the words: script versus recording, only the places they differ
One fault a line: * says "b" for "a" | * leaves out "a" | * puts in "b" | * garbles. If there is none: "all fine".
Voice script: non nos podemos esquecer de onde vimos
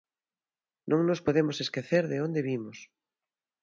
all fine